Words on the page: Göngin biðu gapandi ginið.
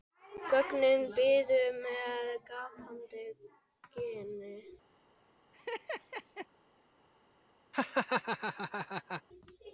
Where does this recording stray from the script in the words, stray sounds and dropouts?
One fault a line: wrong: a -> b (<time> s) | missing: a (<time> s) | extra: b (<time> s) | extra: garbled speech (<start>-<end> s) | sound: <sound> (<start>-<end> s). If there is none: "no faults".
extra: með (1.8 s)
sound: laugh (5.5-6.5 s)
sound: laugh (7.7-9.2 s)